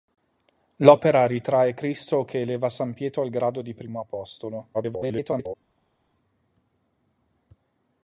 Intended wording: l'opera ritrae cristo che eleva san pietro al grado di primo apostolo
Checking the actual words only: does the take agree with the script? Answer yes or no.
no